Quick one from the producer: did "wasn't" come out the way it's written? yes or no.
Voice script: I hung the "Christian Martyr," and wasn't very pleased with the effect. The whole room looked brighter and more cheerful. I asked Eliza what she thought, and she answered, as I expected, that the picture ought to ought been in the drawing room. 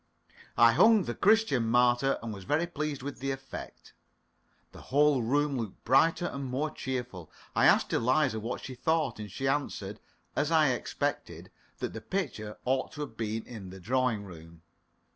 no